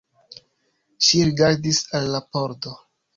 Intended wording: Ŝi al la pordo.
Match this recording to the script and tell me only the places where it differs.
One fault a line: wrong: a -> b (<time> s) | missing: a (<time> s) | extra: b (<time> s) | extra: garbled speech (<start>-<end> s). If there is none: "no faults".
extra: rigardis (1.3 s)